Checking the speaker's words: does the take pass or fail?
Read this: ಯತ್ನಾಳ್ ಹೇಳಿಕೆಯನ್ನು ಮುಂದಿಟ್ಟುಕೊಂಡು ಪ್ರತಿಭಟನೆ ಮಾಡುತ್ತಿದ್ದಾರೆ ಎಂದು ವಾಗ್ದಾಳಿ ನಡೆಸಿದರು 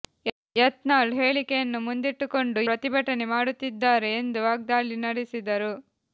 pass